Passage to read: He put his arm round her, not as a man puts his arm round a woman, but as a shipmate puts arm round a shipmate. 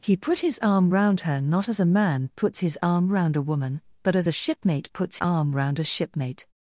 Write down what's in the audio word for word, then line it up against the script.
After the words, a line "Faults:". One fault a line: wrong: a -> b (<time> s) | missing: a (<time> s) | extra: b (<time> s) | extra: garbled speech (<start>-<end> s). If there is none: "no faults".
He put his arm round her, not as a man puts his arm round a woman, but as a shipmate puts arm round a shipmate.
Faults:
no faults